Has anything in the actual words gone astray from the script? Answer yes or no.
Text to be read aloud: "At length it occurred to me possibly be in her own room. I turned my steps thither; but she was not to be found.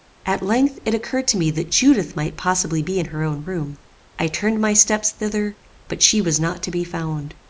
yes